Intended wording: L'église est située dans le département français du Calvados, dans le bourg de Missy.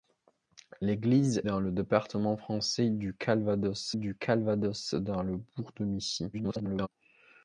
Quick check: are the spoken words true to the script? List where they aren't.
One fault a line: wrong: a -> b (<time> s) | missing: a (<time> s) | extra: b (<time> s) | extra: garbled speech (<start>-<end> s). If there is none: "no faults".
missing: est située (1.4 s)
extra: du Calvados (3.9 s)
extra: garbled speech (6.3-6.9 s)